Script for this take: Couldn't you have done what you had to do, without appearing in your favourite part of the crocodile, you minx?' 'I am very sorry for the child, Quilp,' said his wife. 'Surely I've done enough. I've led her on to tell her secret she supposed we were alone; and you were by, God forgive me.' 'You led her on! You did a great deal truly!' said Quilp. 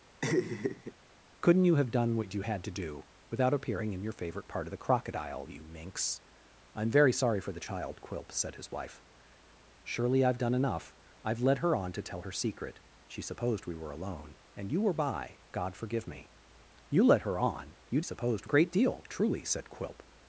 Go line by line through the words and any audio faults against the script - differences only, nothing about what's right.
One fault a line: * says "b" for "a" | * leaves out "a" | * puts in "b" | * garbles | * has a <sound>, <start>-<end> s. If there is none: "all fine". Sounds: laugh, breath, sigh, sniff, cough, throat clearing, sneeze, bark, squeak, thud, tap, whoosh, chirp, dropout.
* has a laugh, 0.2-0.9 s
* says "supposed" for "did"